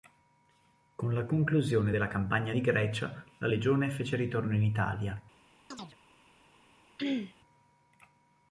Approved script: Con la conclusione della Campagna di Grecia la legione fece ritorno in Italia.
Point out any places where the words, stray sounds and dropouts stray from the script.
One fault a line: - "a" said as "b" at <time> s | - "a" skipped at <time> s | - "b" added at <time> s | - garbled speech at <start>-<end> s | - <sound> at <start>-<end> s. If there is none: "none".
- chirp at 5.7-6.0 s
- throat clearing at 7.0-7.3 s